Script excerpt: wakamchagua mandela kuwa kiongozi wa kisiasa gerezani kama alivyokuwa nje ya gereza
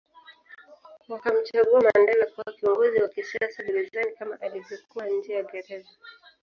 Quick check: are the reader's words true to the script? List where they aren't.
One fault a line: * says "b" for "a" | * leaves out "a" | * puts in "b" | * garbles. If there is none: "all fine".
all fine